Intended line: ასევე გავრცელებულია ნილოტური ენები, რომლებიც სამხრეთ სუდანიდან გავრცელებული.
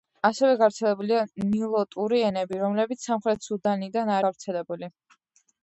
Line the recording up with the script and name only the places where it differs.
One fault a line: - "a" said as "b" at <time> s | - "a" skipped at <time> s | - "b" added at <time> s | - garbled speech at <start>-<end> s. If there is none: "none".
none